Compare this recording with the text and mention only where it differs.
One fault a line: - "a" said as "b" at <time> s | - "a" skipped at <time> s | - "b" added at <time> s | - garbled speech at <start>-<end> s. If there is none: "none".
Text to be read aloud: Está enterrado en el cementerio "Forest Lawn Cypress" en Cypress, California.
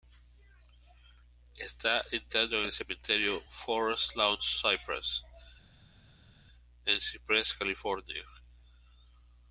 none